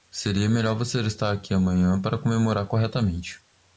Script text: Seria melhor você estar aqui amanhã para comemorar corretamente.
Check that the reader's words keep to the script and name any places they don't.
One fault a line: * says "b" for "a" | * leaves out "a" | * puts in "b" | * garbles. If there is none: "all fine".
all fine